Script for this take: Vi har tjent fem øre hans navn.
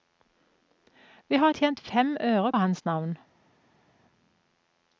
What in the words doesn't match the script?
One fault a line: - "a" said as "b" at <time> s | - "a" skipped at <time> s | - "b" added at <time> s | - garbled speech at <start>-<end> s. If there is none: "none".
none